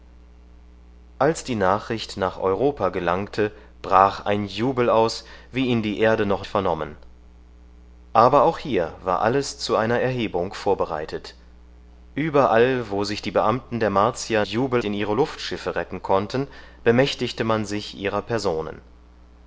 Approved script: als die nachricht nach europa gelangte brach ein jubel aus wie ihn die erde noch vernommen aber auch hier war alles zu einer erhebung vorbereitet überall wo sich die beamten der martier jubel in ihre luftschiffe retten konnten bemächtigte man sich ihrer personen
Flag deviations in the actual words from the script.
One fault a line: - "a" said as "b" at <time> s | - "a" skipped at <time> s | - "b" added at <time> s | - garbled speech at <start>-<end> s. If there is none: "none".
none